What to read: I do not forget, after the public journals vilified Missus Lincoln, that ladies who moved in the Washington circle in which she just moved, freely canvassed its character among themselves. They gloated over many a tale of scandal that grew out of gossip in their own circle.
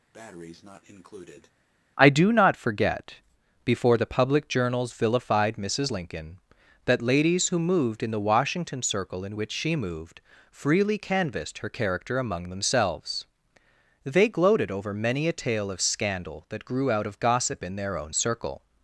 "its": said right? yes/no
no